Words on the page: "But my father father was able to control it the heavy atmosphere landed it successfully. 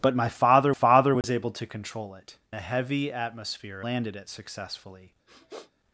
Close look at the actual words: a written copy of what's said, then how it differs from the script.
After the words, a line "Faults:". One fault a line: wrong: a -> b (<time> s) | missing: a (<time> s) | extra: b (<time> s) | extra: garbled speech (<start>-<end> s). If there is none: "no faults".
"But my father father was able to control it the heavy atmosphere landed it successfully.
Faults:
no faults